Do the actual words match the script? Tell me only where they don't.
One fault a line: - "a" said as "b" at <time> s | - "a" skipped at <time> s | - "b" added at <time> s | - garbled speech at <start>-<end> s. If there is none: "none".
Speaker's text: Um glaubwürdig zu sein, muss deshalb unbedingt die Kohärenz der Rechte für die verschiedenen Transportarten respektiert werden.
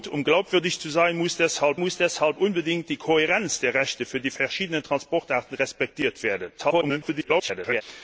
- "muss deshalb" added at 1.8 s
- garbled speech at 6.6-7.8 s